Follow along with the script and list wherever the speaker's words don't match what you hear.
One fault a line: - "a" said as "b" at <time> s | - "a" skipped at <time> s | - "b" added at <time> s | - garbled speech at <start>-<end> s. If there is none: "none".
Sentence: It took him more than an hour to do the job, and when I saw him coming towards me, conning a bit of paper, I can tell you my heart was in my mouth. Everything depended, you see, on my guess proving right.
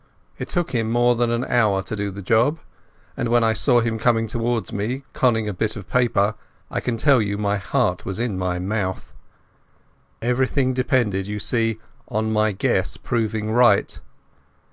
none